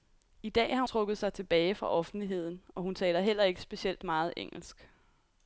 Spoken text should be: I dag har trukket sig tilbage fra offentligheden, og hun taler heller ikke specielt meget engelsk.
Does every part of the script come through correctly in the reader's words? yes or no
yes